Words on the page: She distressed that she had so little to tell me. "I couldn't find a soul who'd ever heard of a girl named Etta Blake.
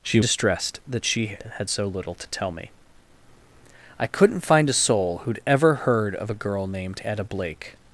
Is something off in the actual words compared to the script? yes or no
no